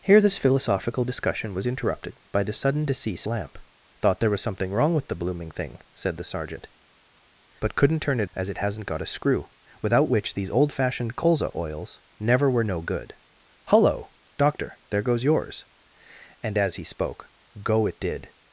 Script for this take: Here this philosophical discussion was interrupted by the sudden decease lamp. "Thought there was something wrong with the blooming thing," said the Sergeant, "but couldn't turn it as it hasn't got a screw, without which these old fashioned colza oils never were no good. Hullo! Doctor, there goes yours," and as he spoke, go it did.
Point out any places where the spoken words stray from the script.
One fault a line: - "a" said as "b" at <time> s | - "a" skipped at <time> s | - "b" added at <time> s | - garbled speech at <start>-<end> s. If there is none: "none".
none